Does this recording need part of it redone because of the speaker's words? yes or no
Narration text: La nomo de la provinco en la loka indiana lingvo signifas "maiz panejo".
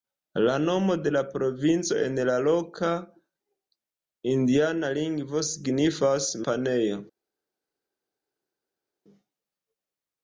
yes